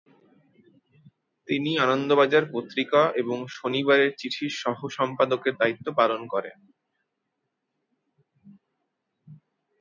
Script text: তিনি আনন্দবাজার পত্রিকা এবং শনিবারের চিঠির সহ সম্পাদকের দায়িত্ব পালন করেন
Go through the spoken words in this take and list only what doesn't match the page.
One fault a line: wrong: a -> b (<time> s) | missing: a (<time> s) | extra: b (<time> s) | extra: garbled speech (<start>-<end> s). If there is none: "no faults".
no faults